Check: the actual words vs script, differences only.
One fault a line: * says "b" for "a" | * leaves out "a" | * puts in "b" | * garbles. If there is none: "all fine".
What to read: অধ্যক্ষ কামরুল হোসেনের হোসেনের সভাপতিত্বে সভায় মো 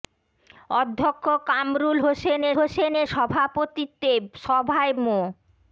all fine